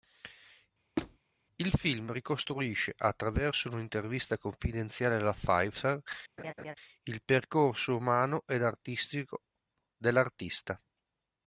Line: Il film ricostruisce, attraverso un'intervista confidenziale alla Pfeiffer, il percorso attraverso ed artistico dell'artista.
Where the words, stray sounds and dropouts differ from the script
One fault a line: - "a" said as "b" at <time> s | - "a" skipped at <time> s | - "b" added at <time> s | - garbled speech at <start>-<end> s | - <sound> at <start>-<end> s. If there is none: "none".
- squeak at 1.0-1.2 s
- laugh at 6.4-6.7 s
- "attraverso" said as "umano" at 7.9 s